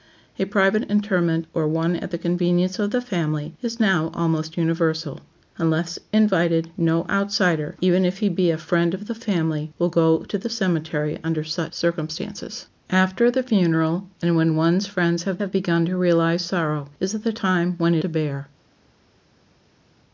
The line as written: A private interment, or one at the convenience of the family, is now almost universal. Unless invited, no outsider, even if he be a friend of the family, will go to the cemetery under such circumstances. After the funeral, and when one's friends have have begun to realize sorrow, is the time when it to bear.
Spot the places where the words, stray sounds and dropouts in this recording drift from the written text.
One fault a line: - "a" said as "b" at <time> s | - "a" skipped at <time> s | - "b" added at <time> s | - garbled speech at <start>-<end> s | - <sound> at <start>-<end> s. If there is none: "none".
none